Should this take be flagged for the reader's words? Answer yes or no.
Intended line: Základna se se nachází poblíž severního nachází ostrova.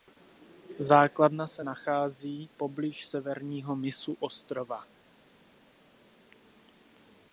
yes